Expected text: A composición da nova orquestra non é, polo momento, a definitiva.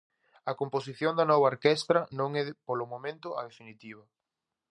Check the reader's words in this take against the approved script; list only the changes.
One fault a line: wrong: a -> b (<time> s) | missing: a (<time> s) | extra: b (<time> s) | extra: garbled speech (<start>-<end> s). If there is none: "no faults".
no faults